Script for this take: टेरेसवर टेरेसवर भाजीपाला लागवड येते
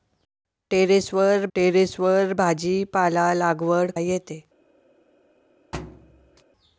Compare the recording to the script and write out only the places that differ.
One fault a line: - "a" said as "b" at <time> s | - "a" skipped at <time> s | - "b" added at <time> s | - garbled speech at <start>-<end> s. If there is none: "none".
none